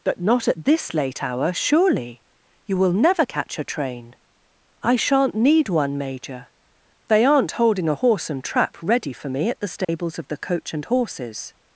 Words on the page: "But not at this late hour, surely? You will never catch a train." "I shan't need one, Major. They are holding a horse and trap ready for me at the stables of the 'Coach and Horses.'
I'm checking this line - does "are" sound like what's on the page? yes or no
no